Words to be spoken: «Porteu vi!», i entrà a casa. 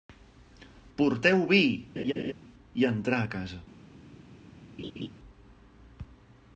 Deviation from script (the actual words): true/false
false